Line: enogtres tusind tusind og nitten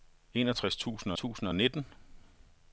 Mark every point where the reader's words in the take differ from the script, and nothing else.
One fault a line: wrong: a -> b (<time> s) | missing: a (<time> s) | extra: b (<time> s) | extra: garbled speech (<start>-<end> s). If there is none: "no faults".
no faults